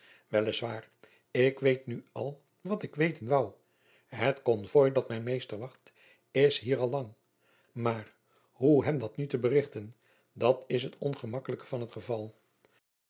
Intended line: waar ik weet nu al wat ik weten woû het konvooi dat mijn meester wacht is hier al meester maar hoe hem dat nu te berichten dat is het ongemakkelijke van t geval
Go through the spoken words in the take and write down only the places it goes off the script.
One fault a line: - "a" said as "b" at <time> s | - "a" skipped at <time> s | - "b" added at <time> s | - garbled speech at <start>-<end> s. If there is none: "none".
- "meester" said as "lang" at 6.9 s